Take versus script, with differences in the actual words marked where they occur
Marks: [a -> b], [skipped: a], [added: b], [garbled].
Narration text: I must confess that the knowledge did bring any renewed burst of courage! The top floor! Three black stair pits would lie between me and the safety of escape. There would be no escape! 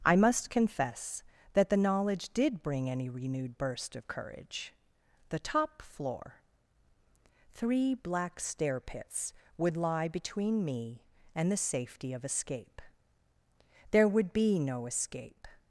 I must confess that the knowledge did bring any renewed burst of courage! The top floor! Three black stair pits would lie between me and the safety of escape. There would be no escape!